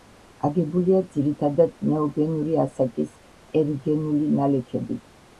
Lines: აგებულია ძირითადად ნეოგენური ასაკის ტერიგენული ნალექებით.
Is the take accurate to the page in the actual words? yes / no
yes